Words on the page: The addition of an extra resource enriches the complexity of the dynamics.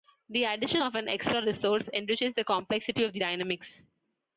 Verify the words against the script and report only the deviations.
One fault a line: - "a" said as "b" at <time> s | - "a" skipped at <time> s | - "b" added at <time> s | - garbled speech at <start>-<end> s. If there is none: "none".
none